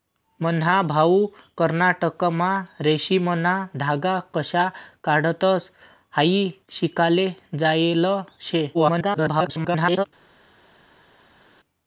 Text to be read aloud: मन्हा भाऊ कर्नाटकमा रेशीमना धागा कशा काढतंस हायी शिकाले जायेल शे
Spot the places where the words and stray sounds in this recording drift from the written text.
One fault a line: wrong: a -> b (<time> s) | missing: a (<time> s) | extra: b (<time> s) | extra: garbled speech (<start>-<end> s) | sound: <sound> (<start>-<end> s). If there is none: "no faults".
extra: garbled speech (8.7-10.0 s)